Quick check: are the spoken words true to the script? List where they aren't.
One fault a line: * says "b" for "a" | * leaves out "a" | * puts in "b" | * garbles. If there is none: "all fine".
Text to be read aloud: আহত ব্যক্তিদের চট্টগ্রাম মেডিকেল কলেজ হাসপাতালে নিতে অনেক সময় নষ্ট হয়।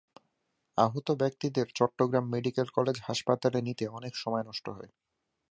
all fine